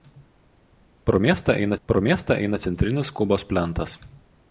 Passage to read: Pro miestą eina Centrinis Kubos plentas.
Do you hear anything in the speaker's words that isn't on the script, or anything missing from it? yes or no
yes